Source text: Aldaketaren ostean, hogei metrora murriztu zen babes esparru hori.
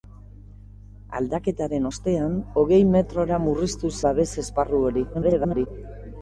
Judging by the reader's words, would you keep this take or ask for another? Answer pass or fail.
fail